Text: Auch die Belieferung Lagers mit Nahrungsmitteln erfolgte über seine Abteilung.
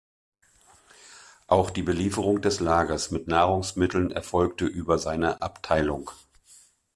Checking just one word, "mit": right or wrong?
right